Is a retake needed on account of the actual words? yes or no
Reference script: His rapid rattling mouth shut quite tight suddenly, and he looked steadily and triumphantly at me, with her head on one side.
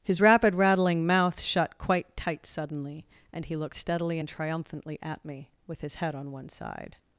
yes